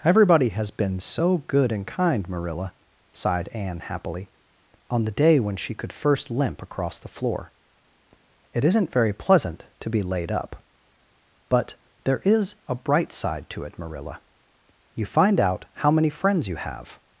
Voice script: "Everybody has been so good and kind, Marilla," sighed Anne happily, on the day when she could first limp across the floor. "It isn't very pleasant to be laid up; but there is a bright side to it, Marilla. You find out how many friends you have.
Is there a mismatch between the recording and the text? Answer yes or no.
no